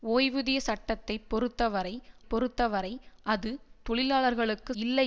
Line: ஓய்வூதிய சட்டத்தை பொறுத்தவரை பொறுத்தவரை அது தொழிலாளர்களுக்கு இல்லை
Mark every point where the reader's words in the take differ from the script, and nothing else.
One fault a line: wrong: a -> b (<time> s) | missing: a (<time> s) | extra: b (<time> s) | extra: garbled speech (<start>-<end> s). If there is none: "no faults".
no faults